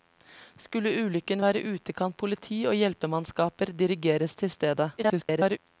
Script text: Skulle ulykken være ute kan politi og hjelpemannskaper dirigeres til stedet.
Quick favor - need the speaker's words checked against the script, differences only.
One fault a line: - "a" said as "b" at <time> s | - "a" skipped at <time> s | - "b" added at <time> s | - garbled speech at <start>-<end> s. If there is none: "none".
- garbled speech at 5.0-5.6 s